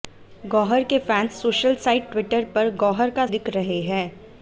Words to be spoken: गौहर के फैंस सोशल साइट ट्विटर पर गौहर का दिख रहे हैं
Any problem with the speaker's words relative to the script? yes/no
no